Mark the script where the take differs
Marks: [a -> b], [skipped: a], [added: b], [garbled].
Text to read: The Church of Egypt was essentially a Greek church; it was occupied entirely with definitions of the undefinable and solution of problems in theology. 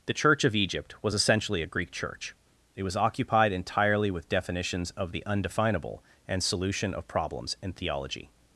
The Church of Egypt was essentially a Greek church; it was occupied entirely with definitions of the undefinable and solution of problems in theology.